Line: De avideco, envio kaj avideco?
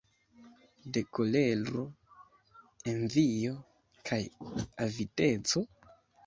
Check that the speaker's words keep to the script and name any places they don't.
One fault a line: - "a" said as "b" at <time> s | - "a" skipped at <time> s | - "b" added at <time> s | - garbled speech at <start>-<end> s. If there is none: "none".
- "avideco" said as "kolero" at 1.2 s